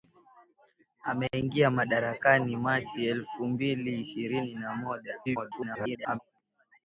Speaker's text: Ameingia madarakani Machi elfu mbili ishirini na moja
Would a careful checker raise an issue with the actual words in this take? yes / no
yes